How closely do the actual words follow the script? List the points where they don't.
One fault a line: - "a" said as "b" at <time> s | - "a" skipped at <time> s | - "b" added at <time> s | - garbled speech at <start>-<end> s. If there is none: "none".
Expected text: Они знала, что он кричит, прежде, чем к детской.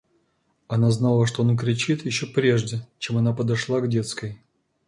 - "Они" said as "Она" at 0.7 s
- "еще" added at 2.0 s
- "она подошла" added at 3.2 s